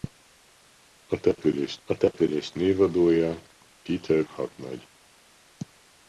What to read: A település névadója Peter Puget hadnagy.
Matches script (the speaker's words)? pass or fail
fail